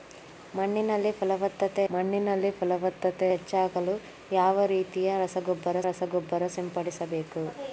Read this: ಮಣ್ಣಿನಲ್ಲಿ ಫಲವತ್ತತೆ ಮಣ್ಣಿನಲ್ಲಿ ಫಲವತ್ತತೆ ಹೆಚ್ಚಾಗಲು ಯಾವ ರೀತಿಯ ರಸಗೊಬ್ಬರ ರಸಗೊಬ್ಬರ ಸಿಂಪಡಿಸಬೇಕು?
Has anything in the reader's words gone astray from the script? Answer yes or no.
no